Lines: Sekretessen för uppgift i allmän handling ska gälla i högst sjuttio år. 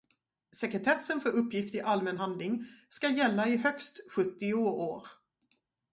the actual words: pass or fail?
pass